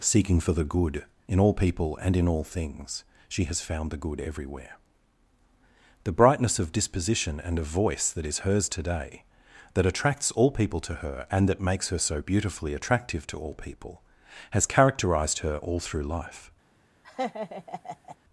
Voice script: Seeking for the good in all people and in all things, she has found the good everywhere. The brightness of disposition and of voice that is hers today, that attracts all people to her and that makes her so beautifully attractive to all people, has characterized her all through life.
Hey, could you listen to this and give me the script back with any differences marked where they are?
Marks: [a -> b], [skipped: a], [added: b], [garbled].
Seeking for the good in all people and in all things, she has found the good everywhere. The brightness of disposition and of voice that is hers today, that attracts all people to her and that makes her so beautifully attractive to all people, has characterized her all through life.